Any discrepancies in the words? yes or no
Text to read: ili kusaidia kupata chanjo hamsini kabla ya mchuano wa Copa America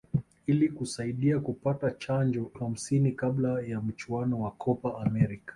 no